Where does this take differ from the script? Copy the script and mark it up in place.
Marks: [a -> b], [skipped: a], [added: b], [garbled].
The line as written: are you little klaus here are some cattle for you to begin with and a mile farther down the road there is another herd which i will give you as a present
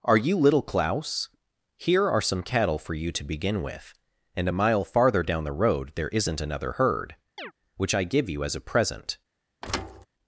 are you little klaus here are some cattle for you to begin with and a mile farther down the road there [is -> isn't] another herd which i [skipped: will] give you as a present